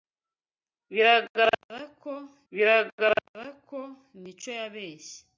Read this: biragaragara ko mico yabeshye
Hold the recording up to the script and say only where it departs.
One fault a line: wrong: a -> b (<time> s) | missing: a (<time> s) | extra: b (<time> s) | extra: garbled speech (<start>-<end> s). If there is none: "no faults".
extra: biragaragara ko (2.5 s)